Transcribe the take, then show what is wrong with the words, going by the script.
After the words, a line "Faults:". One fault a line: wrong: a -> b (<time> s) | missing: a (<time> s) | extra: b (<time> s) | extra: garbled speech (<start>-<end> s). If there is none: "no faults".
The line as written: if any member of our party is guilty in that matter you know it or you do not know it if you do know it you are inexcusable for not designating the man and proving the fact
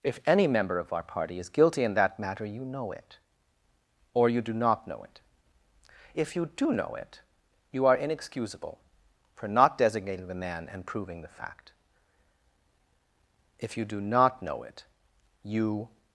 if any member of our party is guilty in that matter you know it or you do not know it if you do know it you are inexcusable for not designating the man and proving the fact if you do not know it you
Faults:
extra: if you do not know it you (13.6 s)